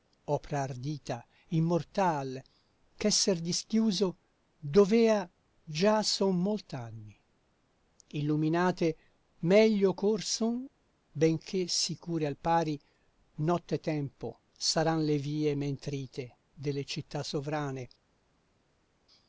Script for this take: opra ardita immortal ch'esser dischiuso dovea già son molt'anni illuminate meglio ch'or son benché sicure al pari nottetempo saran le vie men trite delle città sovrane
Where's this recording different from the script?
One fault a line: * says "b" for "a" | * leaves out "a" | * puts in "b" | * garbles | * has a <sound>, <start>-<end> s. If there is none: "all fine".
all fine